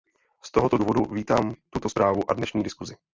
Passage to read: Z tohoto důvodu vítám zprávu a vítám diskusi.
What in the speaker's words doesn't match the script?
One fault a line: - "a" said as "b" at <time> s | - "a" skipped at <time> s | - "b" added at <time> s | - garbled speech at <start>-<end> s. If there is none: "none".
- "tuto" added at 1.7 s
- "vítám" said as "dnešní" at 2.3 s